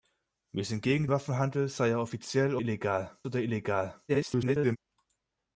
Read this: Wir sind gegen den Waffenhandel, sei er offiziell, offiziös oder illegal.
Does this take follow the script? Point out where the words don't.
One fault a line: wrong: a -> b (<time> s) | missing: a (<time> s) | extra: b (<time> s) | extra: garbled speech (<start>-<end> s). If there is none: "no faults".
missing: den (1.1 s)
wrong: offiziös -> illegal (2.6 s)
extra: garbled speech (4.1-4.8 s)